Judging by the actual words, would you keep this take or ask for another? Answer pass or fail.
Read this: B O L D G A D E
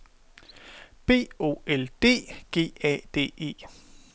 pass